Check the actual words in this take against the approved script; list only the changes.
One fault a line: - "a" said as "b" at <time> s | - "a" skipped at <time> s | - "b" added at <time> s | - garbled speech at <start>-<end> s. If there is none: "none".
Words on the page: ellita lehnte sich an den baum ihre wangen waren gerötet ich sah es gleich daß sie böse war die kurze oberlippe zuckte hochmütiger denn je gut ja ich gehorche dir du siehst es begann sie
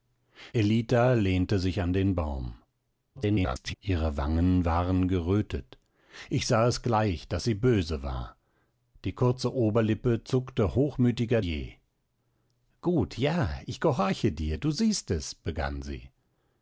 - garbled speech at 3.2-3.7 s
- "denn" skipped at 11.4 s